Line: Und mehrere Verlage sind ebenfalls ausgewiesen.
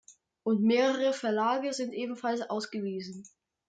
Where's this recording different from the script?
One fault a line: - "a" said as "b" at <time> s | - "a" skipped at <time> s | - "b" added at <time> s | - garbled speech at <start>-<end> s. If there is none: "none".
none